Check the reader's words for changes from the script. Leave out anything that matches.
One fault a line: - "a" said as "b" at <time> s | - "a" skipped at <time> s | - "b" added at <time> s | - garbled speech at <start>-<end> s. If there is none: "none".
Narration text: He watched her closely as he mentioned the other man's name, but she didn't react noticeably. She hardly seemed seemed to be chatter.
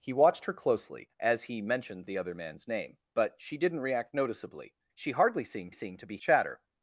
none